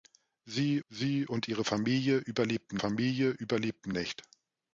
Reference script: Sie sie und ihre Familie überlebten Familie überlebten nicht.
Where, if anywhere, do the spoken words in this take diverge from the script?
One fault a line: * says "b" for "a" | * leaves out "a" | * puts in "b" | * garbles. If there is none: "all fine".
all fine